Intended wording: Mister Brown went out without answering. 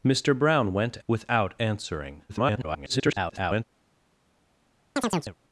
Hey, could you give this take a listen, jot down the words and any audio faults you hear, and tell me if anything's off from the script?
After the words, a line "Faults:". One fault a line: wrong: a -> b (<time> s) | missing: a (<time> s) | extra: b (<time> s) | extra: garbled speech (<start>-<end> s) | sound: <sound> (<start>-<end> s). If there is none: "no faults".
Mister Brown went without answering. [garbled]
Faults:
missing: out (1.0 s)
extra: garbled speech (2.3-3.6 s)
sound: chirp (5.0-5.4 s)